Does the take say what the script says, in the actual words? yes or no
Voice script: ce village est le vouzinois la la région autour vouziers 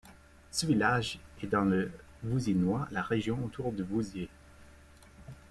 no